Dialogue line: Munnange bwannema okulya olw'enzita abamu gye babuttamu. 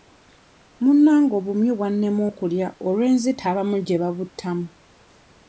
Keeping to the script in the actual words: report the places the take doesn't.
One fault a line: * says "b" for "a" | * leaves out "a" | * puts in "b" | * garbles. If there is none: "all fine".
* puts in "obumyu"